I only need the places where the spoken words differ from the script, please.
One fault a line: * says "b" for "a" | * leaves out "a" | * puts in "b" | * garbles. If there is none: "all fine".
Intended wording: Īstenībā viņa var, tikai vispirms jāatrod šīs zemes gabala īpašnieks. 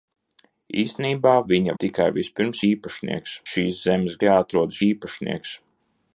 * leaves out "var"
* says "īpašnieks" for "jāatrod"
* says "jāatrod" for "gabala"